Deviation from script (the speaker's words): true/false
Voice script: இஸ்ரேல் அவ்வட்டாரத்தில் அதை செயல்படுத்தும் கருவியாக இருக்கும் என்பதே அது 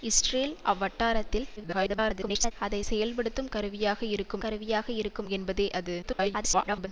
true